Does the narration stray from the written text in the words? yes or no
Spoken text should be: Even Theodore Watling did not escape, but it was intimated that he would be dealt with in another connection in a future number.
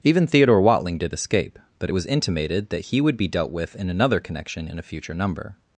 yes